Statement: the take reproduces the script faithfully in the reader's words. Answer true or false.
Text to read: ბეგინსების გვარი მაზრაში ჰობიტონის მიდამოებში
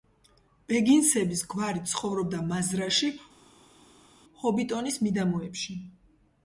false